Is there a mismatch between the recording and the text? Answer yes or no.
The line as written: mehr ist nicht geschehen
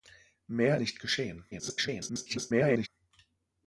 yes